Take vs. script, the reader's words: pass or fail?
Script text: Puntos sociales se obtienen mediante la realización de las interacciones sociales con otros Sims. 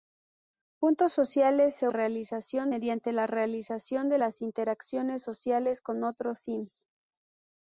fail